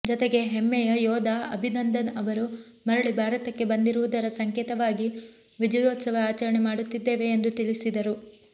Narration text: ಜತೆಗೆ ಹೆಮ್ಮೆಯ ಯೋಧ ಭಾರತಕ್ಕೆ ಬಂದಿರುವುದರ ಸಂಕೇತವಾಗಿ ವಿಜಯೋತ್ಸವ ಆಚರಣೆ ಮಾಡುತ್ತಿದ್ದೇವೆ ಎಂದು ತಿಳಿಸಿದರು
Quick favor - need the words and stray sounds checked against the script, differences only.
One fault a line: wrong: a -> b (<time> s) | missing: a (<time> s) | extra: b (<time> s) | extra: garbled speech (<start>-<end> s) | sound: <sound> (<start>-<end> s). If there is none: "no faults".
extra: ಅಭಿನಂದನ್ ಅವರು ಮರಳಿ (1.5 s)